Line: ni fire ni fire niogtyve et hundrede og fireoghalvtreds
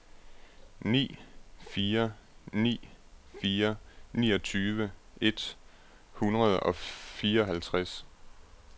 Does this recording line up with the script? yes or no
yes